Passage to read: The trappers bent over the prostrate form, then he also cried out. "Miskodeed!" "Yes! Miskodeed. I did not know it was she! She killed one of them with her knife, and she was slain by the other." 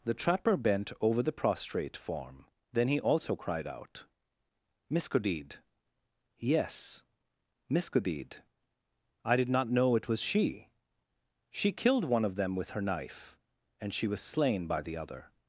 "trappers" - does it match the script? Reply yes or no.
no